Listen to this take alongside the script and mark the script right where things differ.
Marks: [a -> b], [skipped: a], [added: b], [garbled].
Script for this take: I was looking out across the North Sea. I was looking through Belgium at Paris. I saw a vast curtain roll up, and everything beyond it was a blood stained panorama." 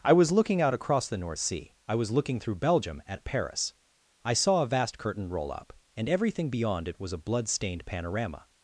I was looking out across the North Sea. I was looking through Belgium at Paris. I saw a vast curtain roll up, and everything beyond it was a blood stained panorama."